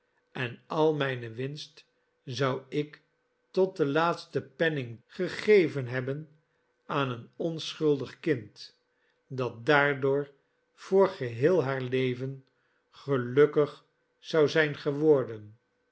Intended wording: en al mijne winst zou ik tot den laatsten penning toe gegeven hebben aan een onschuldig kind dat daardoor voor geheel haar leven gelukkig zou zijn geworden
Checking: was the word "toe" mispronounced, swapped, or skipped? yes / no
yes